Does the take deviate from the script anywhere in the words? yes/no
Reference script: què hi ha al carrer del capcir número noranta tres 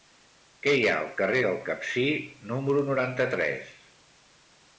no